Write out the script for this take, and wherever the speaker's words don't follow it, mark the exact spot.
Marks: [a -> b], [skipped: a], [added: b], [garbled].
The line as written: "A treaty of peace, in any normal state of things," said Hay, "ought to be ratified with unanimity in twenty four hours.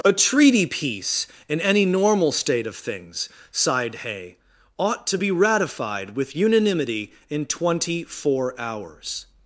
"A treaty [skipped: of] peace, in any normal state of things," [said -> sighed] Hay, "ought to be ratified with unanimity in twenty four hours.